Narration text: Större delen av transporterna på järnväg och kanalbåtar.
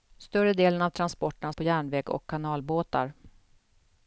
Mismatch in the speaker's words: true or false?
false